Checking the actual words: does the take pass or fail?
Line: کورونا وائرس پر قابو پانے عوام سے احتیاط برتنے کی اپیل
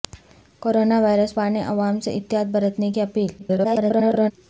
fail